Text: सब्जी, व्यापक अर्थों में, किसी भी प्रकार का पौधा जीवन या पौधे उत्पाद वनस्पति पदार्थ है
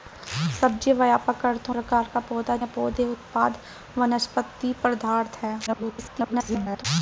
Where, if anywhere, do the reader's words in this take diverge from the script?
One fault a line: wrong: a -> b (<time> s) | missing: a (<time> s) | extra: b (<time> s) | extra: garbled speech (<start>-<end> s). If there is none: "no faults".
missing: में किसी भी (1.7 s)
missing: जीवन (2.6 s)
extra: garbled speech (5.7-6.8 s)